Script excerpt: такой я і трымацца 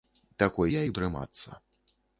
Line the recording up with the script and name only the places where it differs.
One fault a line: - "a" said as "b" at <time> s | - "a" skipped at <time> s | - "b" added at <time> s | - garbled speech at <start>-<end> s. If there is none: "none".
none